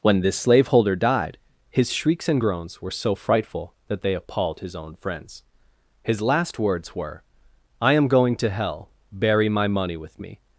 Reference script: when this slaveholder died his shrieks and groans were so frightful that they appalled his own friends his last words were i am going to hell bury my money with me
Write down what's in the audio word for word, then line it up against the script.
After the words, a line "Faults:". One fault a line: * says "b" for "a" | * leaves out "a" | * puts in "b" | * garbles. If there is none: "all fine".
when this slaveholder died his shrieks and groans were so frightful that they appalled his own friends his last words were i am going to hell bury my money with me
Faults:
all fine